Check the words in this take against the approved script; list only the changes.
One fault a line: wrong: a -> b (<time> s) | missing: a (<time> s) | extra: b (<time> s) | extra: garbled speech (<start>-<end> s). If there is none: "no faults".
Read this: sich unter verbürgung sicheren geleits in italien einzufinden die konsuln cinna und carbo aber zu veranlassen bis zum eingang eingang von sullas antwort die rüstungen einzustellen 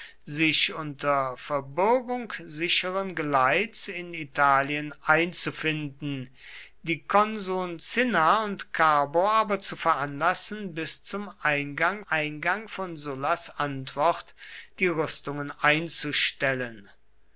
no faults